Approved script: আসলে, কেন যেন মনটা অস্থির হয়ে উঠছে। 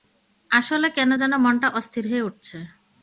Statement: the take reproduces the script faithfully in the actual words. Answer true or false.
true